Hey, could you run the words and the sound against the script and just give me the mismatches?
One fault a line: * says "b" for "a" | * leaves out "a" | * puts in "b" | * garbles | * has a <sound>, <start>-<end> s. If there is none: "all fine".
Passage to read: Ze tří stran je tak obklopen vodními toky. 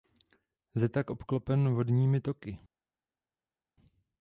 * leaves out "tří stran je"